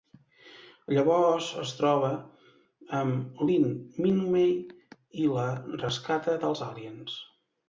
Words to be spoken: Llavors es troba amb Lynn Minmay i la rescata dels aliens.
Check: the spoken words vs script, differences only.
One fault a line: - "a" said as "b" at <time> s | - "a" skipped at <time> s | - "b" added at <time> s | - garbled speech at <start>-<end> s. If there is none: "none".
none